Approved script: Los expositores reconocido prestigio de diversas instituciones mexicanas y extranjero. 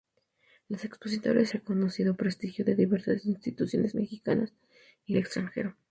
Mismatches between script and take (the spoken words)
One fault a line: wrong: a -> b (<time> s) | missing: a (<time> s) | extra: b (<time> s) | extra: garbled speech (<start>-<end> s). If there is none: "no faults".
no faults